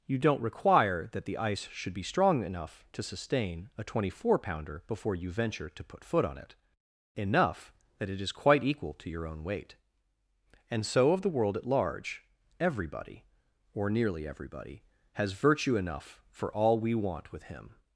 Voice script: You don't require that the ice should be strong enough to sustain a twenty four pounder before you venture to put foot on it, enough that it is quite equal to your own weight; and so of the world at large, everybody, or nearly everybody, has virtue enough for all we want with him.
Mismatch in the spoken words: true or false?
false